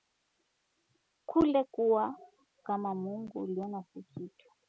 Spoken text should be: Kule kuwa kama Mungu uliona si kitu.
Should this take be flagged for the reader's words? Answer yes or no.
no